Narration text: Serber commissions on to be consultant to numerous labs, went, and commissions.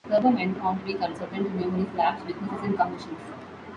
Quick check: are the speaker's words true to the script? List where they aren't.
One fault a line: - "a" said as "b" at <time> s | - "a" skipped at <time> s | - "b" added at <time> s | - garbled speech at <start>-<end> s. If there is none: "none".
- "commissions" said as "went" at 0.3 s
- "went" said as "businesses" at 2.2 s